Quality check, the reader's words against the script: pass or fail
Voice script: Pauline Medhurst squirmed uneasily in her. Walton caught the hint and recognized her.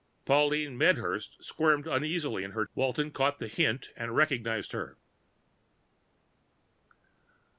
pass